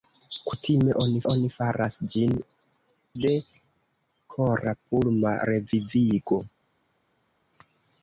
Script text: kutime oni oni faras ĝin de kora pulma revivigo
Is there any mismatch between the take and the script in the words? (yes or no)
no